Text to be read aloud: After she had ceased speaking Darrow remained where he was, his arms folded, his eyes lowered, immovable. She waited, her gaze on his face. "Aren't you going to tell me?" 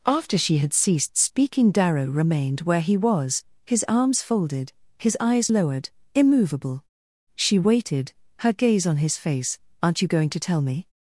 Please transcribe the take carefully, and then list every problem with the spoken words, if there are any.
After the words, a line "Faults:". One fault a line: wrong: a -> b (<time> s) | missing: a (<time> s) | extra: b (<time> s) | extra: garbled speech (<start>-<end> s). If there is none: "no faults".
After she had ceased speaking Darrow remained where he was, his arms folded, his eyes lowered, immovable. She waited, her gaze on his face. "Aren't you going to tell me?"
Faults:
no faults